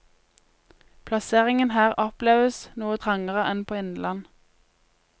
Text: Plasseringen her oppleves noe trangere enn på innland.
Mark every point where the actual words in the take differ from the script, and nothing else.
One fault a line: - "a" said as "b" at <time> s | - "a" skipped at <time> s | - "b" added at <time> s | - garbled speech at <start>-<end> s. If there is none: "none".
none